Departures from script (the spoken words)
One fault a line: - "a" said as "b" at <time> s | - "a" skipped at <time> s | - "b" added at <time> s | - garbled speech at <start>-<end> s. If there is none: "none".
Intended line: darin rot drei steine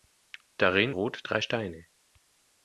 none